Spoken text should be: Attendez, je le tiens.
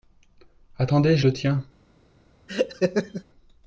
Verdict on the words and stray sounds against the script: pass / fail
fail